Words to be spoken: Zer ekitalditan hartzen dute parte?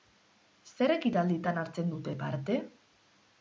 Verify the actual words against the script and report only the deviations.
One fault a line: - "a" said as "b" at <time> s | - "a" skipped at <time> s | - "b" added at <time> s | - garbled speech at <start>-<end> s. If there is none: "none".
none